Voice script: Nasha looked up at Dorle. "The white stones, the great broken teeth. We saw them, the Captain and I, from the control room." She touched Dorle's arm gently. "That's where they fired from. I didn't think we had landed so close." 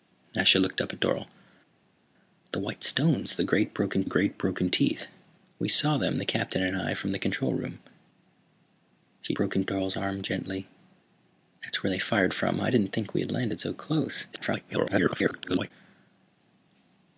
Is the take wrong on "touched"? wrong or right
wrong